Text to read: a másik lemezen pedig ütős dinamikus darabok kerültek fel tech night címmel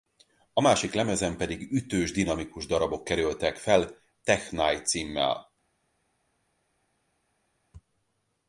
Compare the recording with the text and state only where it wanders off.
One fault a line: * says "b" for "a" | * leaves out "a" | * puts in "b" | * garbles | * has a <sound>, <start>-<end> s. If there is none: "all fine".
all fine